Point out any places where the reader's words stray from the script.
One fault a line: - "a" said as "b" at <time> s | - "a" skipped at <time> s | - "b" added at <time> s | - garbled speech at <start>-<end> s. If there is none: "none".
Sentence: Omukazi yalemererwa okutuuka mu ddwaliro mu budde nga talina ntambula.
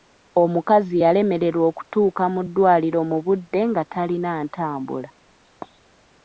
none